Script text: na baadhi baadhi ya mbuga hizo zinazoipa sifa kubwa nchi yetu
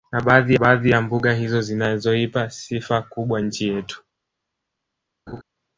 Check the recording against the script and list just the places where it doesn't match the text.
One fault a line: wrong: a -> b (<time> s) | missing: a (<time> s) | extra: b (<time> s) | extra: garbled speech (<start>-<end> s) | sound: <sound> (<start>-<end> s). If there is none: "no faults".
sound: laugh (5.3-5.4 s)